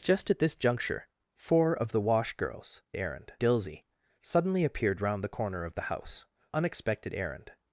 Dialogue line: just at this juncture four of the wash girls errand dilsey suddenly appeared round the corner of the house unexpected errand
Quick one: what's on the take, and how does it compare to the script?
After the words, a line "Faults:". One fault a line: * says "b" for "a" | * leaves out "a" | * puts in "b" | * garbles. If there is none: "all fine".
just at this juncture four of the wash girls errand dilsey suddenly appeared round the corner of the house unexpected errand
Faults:
all fine